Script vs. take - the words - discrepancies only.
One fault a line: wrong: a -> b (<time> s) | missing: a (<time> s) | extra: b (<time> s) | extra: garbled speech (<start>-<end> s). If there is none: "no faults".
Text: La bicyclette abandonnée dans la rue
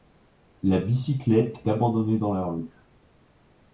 no faults